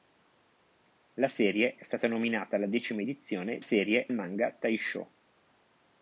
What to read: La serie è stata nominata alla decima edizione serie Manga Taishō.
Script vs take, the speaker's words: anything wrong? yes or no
no